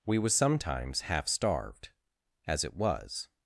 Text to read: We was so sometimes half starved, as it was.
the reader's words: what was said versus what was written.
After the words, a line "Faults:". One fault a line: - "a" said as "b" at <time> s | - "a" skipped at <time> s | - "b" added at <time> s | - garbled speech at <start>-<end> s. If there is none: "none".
We was sometimes half starved, as it was.
Faults:
- "so" skipped at 0.3 s